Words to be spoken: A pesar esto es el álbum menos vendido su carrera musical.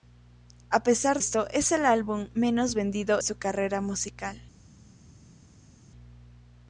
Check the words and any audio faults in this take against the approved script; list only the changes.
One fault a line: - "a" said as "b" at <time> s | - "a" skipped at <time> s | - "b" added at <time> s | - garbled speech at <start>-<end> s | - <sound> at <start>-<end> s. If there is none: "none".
none